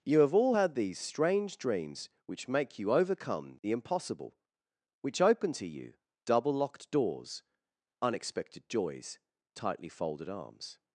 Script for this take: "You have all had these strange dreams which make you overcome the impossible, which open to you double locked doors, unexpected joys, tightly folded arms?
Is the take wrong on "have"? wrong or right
right